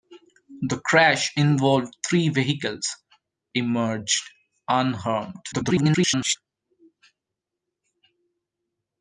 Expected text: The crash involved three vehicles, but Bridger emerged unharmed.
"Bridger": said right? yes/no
no